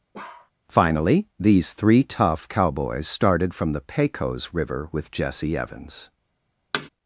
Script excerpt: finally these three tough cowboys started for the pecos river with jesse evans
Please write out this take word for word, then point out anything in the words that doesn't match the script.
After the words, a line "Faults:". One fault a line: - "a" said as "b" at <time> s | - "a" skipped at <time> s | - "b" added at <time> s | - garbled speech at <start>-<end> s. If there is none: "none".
finally these three tough cowboys started from the pecos river with jesse evans
Faults:
- "for" said as "from" at 3.5 s